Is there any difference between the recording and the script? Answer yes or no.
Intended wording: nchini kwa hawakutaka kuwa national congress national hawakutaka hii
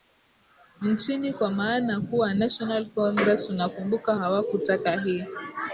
yes